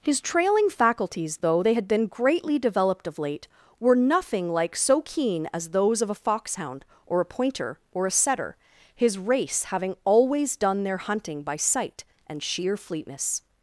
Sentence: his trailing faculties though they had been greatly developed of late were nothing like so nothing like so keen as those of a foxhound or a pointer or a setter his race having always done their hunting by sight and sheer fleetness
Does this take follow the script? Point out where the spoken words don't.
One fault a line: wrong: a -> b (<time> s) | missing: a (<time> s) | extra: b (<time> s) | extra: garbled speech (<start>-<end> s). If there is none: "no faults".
missing: nothing like so (5.0 s)